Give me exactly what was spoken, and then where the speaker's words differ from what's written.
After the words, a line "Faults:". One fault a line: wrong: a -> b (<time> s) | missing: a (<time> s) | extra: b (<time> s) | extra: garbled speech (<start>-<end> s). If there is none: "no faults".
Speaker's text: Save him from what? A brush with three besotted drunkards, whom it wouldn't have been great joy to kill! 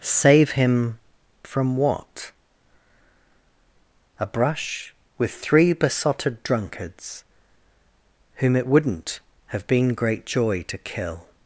Save him from what? A brush with three besotted drunkards, whom it wouldn't have been great joy to kill!
Faults:
no faults